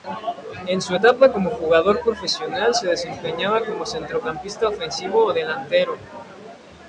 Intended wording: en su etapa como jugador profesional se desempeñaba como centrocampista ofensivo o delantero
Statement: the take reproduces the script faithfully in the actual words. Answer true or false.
true